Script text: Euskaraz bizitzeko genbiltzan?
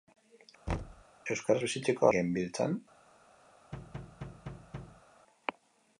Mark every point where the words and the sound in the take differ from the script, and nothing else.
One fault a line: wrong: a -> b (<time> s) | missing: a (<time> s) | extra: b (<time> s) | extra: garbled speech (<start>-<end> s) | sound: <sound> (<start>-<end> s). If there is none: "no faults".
sound: thud (0.7-1.0 s)
sound: thud (3.7-5.0 s)